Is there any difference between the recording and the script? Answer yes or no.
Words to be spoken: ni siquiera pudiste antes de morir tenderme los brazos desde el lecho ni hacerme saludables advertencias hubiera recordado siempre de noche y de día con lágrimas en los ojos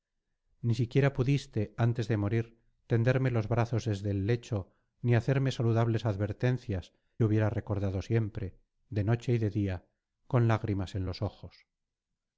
no